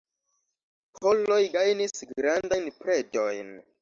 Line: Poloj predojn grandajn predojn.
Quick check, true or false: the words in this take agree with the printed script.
false